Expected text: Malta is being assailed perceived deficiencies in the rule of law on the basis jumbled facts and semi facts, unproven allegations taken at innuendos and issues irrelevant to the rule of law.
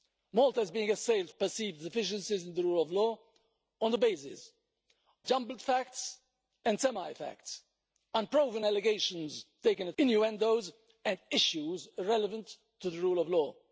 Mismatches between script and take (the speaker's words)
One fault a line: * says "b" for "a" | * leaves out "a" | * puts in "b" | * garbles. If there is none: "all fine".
all fine